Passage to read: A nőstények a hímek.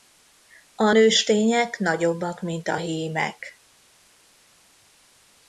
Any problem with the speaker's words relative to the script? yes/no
yes